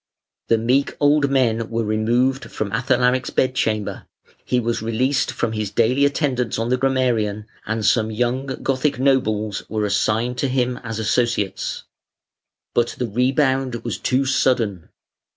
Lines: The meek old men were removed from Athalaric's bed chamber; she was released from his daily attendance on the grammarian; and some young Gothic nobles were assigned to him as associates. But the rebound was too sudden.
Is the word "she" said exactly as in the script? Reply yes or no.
no